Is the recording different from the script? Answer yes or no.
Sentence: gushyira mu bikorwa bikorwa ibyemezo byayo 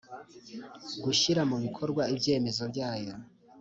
yes